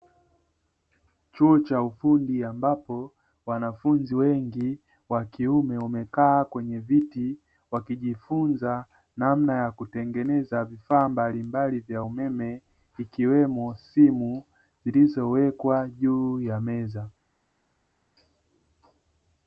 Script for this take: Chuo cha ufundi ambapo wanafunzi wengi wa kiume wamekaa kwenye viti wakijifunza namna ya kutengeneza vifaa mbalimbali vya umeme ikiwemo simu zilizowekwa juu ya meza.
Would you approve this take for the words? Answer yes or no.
yes